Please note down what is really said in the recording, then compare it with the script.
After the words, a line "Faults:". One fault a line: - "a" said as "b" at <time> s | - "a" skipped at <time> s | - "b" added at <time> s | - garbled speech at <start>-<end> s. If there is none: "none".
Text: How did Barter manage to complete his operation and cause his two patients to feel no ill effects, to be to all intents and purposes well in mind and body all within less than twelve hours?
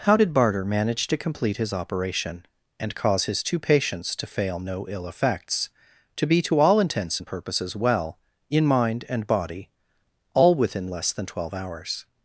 How did Barter manage to complete his operation and cause his two patients to fail no ill effects, to be to all intents and purposes well in mind and body all within less than twelve hours?
Faults:
- "feel" said as "fail" at 4.3 s